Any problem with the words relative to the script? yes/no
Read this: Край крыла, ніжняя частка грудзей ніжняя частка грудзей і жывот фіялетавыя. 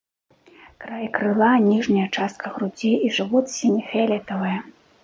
yes